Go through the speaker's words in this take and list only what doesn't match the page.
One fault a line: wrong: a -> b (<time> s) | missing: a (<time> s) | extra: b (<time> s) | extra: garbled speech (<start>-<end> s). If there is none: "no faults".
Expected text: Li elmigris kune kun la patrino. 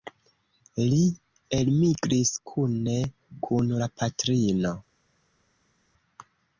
no faults